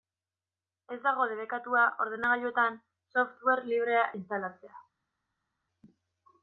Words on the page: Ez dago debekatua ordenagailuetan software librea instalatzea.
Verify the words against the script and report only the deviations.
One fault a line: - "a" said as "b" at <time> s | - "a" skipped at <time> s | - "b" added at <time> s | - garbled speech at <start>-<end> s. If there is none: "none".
none